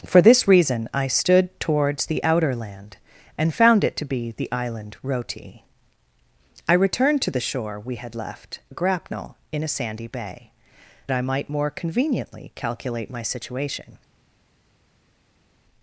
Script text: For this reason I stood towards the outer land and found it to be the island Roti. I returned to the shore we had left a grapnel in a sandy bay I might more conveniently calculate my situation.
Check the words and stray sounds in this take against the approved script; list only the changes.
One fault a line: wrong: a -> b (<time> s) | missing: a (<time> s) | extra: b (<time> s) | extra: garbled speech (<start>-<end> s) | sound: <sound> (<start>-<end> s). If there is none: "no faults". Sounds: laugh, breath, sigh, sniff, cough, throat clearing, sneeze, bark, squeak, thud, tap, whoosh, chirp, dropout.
no faults